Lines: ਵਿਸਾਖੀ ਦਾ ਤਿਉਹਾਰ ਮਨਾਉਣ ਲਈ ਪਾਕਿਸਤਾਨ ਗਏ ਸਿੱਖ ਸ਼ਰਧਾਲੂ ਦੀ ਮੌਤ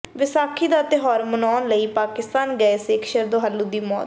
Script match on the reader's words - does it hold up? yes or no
yes